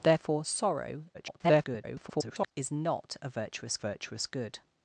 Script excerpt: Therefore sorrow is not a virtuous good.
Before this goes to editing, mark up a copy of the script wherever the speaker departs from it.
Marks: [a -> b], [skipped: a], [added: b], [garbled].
Therefore sorrow [garbled] is not a virtuous [added: virtuous] good.